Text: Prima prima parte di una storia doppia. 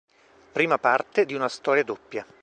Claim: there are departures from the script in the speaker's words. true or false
true